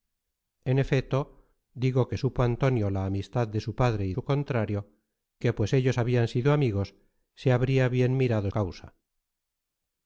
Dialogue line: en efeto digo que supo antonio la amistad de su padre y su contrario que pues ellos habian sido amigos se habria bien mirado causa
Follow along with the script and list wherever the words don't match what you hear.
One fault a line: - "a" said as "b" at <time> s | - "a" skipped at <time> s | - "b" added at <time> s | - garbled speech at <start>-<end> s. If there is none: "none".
none